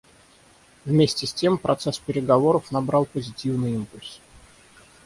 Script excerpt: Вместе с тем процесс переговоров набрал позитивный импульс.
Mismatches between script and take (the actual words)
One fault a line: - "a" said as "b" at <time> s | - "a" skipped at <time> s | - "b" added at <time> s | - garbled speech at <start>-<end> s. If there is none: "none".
none